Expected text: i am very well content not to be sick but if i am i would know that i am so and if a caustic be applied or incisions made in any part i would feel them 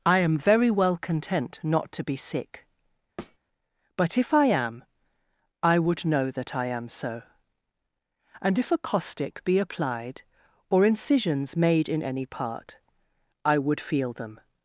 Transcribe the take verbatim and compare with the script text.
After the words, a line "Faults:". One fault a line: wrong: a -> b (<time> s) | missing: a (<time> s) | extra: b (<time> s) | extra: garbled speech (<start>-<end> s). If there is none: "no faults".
i am very well content not to be sick but if i am i would know that i am so and if a caustic be applied or incisions made in any part i would feel them
Faults:
no faults